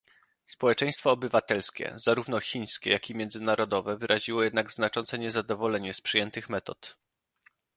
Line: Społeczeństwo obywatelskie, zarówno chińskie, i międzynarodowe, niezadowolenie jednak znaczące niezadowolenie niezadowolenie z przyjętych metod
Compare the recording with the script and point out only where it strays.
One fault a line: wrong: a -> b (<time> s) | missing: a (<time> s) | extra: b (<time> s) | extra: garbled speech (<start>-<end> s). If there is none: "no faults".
extra: jak (2.9 s)
wrong: niezadowolenie -> wyraziło (4.0 s)
missing: niezadowolenie (5.9 s)